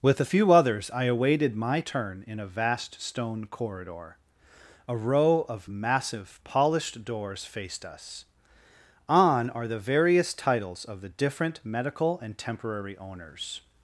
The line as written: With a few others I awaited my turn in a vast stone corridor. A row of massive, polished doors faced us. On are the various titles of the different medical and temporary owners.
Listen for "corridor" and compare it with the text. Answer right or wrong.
right